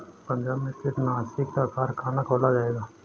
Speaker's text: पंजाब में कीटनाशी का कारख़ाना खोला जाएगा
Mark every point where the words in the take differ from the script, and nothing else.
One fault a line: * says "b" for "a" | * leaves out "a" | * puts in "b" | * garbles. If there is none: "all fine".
all fine